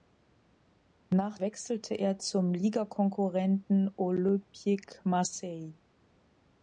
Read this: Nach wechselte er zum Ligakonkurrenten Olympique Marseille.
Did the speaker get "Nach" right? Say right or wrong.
right